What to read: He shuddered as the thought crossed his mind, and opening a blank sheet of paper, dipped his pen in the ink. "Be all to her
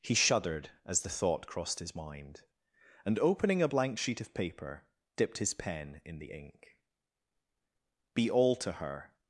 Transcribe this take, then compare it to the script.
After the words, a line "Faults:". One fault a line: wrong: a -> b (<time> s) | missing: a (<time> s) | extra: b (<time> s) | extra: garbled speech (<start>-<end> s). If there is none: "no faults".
He shuddered as the thought crossed his mind, and opening a blank sheet of paper, dipped his pen in the ink. "Be all to her
Faults:
no faults